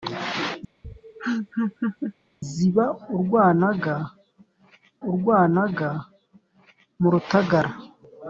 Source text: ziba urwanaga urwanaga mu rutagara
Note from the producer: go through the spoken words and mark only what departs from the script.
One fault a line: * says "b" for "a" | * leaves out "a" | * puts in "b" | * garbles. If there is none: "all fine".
all fine